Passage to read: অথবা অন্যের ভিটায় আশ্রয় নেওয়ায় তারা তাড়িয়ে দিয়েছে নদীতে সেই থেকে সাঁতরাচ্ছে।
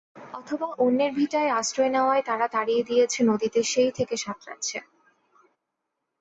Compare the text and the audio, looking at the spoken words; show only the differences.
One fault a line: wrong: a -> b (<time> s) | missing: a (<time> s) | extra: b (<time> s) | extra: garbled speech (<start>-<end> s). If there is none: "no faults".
no faults